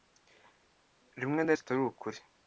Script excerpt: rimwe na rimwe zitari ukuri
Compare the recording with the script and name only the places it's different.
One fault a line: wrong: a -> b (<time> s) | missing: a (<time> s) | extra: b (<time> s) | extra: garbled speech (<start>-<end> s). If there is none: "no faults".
missing: rimwe (1.5 s)